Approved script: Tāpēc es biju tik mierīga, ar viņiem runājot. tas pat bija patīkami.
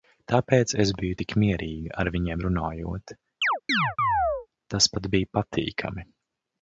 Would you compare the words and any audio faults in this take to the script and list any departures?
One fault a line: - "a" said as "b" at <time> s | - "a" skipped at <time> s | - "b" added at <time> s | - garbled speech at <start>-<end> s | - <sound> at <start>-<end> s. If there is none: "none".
- chirp at 3.4-4.5 s